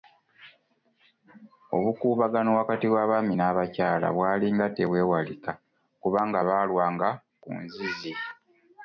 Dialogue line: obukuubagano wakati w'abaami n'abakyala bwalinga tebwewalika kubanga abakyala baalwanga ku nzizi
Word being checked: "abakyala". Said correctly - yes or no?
no